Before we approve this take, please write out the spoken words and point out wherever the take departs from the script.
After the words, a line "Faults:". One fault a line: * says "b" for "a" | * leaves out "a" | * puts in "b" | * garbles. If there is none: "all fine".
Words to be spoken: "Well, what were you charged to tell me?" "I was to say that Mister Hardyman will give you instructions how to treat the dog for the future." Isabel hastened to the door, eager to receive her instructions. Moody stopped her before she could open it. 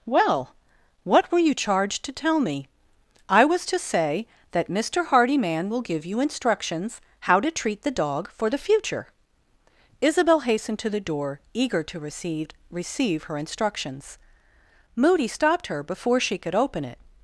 "Well, what were you charged to tell me?" "I was to say that Mister Hardyman will give you instructions how to treat the dog for the future." Isabel hastened to the door, eager to receive receive her instructions. Moody stopped her before she could open it.
Faults:
* puts in "receive"